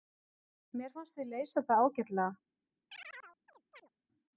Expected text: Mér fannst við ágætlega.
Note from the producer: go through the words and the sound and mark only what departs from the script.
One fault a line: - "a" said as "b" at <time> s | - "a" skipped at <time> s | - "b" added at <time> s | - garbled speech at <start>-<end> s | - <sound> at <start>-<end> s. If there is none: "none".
- "leysa það" added at 1.3 s
- chirp at 2.9-3.9 s